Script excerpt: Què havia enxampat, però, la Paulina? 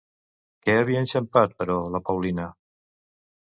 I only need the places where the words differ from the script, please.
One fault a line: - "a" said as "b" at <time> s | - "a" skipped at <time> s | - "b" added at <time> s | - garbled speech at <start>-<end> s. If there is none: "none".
none